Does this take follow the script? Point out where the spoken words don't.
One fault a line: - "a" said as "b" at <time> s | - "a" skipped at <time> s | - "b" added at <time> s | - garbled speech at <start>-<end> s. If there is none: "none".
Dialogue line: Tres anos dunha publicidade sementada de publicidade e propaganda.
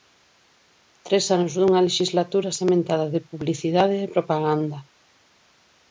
- "publicidade" said as "lexislatura" at 1.9 s